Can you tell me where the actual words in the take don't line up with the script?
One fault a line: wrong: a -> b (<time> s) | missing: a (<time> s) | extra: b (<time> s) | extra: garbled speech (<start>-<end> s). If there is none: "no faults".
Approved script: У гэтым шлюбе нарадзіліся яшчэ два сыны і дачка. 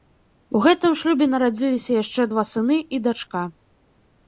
no faults